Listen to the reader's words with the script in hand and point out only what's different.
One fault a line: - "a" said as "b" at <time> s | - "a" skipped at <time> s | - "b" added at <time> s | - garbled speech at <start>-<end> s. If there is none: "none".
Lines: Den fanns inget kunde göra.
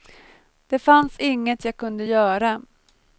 - "Den" said as "Det" at 0.7 s
- "jag" added at 1.7 s